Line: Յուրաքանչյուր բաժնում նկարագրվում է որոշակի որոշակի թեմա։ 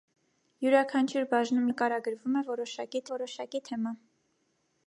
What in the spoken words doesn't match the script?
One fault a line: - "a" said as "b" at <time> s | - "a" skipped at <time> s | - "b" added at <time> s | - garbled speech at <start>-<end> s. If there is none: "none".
none